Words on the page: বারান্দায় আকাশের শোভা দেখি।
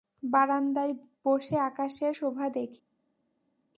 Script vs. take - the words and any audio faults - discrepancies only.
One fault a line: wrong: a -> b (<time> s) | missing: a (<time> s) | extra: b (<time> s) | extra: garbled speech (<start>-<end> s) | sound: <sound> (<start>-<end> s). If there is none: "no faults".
extra: বসে (1.2 s)